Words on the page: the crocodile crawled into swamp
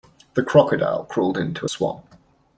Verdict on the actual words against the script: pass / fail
pass